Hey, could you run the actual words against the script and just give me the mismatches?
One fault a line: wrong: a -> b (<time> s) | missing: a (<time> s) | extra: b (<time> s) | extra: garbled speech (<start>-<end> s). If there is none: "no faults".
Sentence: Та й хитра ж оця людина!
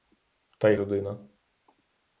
missing: хитра ж оця (0.8 s)